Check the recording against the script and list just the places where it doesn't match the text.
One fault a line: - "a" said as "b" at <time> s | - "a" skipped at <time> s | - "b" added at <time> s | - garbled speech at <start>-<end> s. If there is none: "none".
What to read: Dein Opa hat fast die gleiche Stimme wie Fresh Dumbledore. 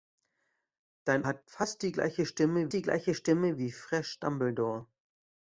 - "Opa" skipped at 1.2 s
- "die gleiche Stimme" added at 2.7 s